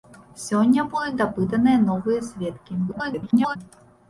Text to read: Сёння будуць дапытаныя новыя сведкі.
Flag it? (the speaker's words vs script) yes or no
yes